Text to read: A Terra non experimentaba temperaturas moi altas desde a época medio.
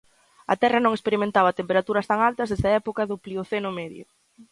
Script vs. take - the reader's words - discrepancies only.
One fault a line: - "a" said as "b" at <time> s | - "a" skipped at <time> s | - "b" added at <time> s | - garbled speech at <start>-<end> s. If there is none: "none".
- "moi" said as "tan" at 2.1 s
- "do Plioceno" added at 3.1 s